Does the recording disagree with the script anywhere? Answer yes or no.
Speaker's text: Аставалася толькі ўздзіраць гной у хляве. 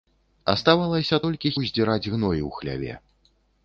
no